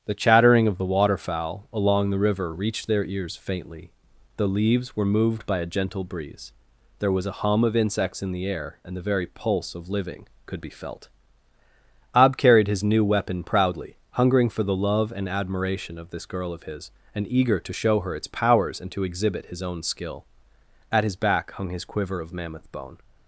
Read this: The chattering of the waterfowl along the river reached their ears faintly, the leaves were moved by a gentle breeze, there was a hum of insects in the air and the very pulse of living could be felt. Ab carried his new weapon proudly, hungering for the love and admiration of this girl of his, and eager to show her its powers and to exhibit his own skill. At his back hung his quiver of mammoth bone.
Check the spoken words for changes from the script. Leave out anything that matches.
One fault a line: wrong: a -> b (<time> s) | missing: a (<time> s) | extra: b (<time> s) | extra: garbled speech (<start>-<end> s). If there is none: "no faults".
no faults